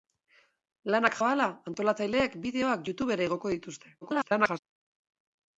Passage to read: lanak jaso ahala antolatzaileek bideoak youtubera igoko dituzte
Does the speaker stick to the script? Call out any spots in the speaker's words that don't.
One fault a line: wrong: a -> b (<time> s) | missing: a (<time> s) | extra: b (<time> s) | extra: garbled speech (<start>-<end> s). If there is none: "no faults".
missing: jaso (1.2 s)
extra: garbled speech (4.0-4.6 s)